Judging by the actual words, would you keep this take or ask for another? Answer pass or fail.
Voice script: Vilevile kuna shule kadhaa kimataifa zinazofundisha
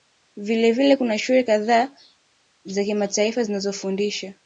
fail